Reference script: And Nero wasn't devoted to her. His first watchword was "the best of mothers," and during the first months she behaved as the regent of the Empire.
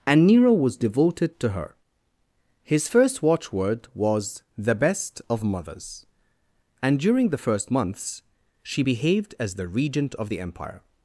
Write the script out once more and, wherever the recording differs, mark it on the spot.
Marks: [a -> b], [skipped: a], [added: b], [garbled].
And Nero [wasn't -> was] devoted to her. His first watchword was "the best of mothers," and during the first months she behaved as the regent of the Empire.